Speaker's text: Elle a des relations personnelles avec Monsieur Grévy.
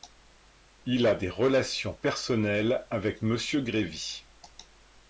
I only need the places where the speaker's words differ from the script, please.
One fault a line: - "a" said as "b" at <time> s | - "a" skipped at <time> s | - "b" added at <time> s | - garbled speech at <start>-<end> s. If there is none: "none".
- "Elle" said as "Il" at 0.9 s